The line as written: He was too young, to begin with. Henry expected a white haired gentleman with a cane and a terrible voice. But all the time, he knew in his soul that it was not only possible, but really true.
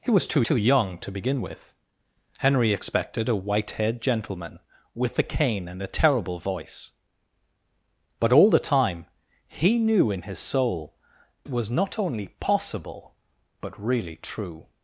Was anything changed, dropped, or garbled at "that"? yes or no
yes